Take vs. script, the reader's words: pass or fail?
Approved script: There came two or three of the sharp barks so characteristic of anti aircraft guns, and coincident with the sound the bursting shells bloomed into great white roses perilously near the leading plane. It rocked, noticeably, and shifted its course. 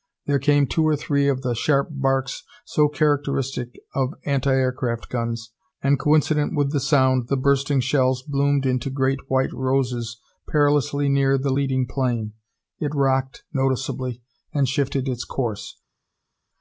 pass